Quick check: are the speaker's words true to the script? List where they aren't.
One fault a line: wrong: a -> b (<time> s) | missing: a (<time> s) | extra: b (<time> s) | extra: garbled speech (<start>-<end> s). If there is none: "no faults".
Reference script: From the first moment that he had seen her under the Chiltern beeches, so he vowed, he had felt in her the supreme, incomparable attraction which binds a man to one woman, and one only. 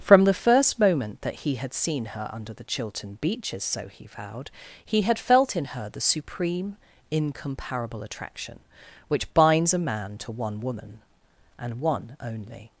no faults